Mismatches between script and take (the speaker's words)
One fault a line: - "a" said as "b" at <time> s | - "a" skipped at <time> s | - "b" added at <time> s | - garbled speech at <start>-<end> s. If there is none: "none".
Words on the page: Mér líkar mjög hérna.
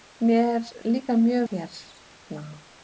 none